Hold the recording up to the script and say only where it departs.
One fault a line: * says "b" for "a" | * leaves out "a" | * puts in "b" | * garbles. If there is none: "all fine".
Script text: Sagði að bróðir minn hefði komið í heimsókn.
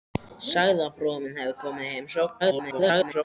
* garbles